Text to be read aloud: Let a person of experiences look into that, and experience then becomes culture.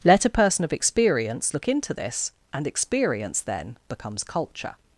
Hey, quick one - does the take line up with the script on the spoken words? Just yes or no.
no